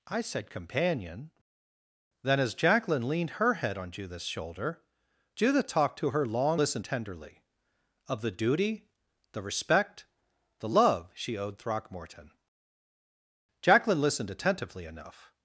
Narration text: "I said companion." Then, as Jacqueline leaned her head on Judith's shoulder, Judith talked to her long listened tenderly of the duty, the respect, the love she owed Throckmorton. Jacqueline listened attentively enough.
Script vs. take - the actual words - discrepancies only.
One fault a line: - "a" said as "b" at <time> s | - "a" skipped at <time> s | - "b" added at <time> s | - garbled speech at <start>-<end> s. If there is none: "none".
none